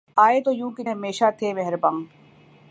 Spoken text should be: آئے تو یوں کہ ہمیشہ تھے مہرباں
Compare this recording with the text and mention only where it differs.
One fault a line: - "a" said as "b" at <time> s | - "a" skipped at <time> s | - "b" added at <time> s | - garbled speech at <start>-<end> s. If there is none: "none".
none